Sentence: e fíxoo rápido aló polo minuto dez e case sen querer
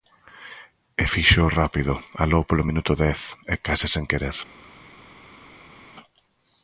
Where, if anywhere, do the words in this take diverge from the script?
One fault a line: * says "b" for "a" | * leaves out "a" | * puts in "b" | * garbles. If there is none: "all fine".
all fine